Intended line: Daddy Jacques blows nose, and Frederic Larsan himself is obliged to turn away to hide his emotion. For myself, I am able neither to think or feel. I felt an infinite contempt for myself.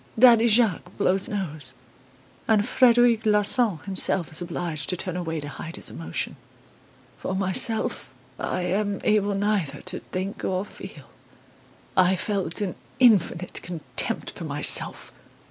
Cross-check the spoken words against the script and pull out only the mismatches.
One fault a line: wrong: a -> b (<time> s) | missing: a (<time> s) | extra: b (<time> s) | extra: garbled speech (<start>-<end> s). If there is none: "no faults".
no faults